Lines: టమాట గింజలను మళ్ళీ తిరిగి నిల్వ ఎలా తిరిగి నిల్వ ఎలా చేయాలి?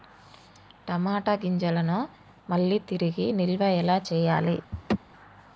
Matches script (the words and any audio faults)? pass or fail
fail